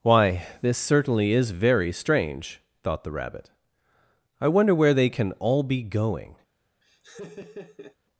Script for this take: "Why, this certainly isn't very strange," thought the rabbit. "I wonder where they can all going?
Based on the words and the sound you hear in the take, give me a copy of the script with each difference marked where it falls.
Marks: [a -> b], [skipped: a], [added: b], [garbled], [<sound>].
"Why, this certainly [isn't -> is] very strange," thought the rabbit. "I wonder where they can all [added: be] going? [laugh]